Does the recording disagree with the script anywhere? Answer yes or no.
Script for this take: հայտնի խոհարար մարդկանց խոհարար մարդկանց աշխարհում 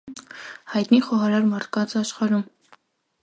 yes